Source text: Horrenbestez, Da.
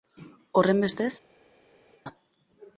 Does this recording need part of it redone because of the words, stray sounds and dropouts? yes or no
no